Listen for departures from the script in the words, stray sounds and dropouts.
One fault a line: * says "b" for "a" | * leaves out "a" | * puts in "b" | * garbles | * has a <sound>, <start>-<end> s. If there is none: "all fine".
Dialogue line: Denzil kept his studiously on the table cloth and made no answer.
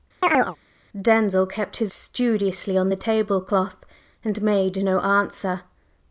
* has a chirp, 0.2-0.6 s